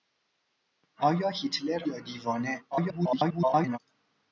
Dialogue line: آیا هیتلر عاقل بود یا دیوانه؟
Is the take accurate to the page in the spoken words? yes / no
no